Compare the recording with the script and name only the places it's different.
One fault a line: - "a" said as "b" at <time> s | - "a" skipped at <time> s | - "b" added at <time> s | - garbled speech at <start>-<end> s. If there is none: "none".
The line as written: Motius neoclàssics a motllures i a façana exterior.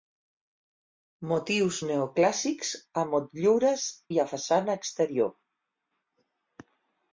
none